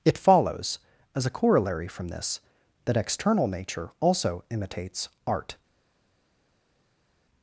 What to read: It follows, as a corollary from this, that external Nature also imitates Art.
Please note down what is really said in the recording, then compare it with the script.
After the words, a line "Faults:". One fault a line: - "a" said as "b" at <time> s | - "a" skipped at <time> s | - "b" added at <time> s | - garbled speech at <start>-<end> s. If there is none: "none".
It follows, as a corollary from this, that external Nature also imitates Art.
Faults:
none